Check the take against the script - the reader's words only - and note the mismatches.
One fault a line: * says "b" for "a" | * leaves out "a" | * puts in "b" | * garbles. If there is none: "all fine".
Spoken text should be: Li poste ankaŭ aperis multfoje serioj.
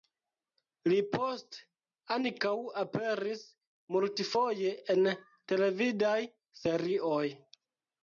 * puts in "en televidaj"